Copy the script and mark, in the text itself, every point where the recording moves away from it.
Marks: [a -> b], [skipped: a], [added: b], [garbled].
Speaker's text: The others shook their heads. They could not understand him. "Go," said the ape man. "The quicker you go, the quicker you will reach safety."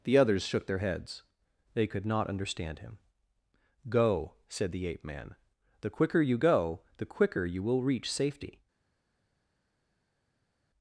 The others shook their heads. They could not understand him. "Go," said the ape man. "The quicker you go, the quicker you will reach safety."